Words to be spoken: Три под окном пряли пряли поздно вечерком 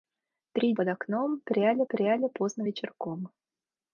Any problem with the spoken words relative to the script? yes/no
no